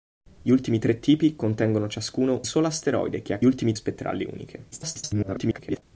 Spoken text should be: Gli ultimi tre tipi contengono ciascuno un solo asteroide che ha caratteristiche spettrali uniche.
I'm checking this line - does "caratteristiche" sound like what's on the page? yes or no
no